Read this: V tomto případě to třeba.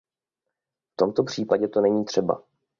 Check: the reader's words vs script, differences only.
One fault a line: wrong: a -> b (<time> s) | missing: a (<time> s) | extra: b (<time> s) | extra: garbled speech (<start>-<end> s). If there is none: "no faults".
extra: není (1.8 s)